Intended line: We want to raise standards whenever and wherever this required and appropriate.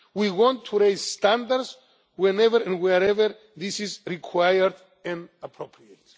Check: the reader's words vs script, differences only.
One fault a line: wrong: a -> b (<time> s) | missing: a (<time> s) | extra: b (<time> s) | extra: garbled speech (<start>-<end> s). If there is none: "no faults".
extra: is (3.8 s)